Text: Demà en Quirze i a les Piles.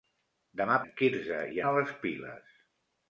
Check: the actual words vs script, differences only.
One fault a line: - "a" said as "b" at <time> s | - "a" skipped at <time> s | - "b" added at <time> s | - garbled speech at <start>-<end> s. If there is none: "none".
none